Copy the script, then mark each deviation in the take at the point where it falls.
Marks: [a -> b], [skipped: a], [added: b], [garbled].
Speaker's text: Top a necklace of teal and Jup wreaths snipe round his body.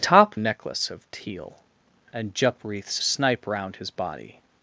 Top a necklace of teal and Jup wreaths snipe round his body.